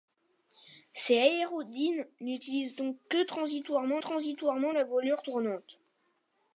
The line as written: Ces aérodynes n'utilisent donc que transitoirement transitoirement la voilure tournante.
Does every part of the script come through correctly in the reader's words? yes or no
yes